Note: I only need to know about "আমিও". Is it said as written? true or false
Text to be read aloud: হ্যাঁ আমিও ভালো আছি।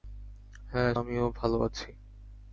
true